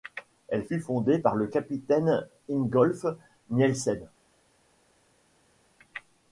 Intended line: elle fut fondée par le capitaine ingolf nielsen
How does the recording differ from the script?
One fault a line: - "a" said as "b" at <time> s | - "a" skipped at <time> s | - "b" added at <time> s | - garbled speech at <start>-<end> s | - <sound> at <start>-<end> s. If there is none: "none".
none